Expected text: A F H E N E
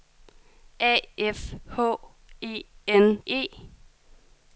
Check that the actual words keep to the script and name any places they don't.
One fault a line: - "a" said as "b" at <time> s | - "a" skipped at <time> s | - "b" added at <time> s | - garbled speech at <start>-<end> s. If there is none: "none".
none